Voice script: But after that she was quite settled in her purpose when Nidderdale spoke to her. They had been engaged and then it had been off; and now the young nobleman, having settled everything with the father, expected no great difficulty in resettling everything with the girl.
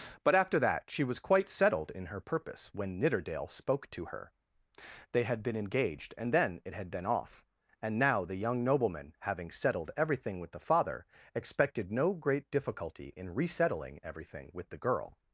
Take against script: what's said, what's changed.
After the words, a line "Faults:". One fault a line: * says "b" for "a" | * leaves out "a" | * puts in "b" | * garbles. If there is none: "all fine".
But after that she was quite settled in her purpose when Nidderdale spoke to her. They had been engaged and then it had been off; and now the young nobleman, having settled everything with the father, expected no great difficulty in resettling everything with the girl.
Faults:
all fine